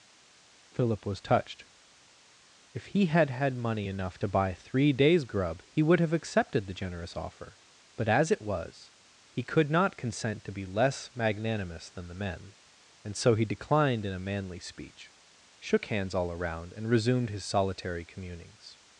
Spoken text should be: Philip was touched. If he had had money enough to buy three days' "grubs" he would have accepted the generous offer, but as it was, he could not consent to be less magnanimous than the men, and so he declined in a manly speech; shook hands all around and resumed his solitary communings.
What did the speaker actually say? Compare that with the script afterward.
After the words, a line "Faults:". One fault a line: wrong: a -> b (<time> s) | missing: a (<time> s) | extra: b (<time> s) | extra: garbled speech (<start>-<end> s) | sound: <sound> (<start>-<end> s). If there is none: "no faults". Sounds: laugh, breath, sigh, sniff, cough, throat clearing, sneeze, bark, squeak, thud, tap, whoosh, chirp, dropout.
Philip was touched. If he had had money enough to buy three days' "grub" he would have accepted the generous offer, but as it was, he could not consent to be less magnanimous than the men, and so he declined in a manly speech; shook hands all around and resumed his solitary communings.
Faults:
wrong: grubs -> grub (5.2 s)